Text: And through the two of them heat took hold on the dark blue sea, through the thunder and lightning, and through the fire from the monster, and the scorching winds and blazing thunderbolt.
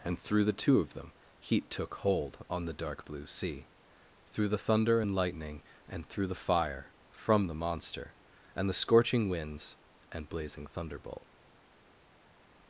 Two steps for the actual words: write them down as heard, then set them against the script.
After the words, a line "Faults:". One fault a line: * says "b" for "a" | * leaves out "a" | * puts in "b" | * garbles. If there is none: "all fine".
And through the two of them heat took hold on the dark blue sea, through the thunder and lightning, and through the fire from the monster, and the scorching winds and blazing thunderbolt.
Faults:
all fine